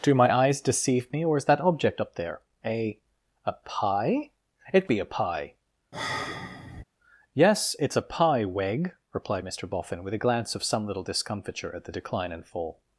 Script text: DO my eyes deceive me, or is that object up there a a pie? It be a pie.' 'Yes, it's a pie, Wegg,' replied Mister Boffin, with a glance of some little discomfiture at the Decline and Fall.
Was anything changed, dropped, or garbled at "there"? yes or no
no